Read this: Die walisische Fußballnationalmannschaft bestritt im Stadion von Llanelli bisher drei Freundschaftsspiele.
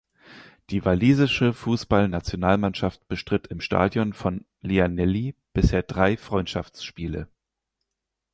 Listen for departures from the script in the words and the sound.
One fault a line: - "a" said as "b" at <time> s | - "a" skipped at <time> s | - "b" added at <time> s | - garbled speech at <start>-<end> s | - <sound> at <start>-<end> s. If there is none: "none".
none